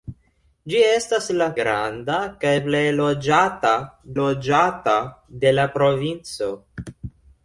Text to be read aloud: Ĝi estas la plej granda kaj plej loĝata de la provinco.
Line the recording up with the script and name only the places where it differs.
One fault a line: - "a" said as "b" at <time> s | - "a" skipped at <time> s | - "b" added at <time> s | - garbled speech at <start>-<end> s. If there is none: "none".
- "plej" skipped at 1.5 s
- "loĝata" added at 4.2 s